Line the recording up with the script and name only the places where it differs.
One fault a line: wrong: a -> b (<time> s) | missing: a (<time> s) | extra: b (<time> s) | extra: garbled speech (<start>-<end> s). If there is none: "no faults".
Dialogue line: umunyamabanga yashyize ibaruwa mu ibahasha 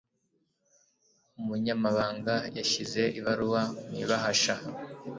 no faults